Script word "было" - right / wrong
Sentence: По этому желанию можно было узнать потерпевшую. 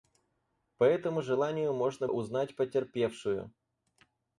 wrong